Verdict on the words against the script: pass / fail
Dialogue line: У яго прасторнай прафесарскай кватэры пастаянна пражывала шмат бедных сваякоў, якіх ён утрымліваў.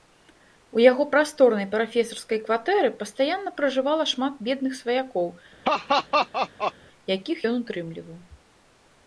pass